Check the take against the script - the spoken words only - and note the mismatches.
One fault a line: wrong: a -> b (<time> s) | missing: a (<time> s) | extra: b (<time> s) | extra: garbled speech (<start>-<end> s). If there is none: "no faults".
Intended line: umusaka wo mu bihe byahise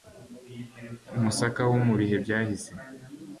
no faults